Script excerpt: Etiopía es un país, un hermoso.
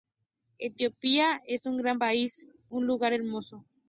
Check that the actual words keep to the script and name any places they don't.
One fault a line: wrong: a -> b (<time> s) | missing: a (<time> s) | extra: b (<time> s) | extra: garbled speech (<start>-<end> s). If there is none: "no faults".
extra: gran (1.8 s)
extra: lugar (2.9 s)